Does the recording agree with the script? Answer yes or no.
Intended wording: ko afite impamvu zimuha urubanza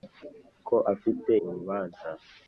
no